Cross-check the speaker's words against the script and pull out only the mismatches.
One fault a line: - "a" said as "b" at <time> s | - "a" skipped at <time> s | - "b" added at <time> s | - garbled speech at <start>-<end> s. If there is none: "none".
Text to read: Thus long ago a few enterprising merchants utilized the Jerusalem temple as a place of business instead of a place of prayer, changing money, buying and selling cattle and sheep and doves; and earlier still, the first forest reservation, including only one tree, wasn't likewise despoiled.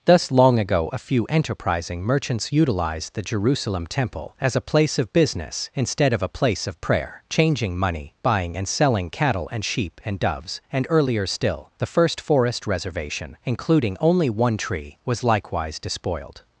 - "wasn't" said as "was" at 15.1 s